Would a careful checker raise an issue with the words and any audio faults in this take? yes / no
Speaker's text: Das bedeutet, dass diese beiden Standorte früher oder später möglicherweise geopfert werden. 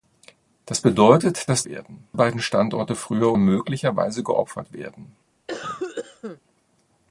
yes